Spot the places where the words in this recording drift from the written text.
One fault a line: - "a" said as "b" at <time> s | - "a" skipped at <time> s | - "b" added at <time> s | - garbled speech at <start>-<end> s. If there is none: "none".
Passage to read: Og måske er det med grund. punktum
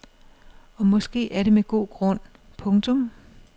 - "god" added at 1.6 s